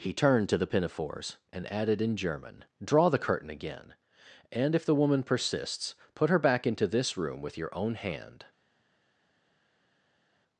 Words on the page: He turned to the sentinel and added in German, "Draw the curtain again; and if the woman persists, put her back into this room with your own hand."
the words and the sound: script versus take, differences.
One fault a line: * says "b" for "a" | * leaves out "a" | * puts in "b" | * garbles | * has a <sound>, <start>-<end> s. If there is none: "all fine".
* says "pinafores" for "sentinel"